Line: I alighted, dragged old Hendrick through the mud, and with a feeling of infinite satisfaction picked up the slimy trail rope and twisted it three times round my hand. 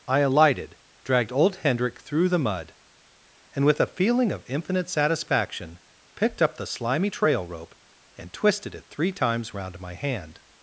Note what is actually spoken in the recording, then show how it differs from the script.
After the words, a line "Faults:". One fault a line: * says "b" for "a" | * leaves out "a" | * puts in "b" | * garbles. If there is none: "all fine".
I alighted, dragged old Hendrick through the mud, and with a feeling of infinite satisfaction picked up the slimy trail rope and twisted it three times round my hand.
Faults:
all fine